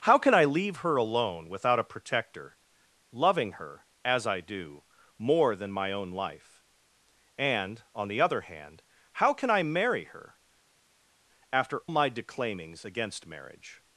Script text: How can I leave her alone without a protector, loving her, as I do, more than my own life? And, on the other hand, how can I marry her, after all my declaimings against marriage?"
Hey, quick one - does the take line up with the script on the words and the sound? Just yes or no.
no